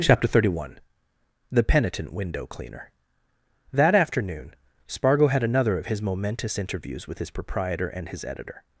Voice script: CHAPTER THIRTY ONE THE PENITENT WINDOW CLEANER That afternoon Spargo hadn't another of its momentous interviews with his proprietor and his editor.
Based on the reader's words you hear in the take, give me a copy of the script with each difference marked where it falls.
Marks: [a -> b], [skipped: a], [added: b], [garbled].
CHAPTER THIRTY ONE THE PENITENT WINDOW CLEANER That afternoon Spargo [hadn't -> had] another of [its -> his] momentous interviews with his proprietor and his editor.